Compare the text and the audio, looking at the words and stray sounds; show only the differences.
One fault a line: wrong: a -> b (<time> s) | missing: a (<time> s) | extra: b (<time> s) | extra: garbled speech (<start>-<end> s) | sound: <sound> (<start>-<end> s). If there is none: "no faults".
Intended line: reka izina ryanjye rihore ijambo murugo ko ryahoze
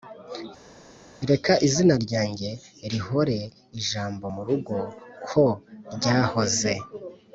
no faults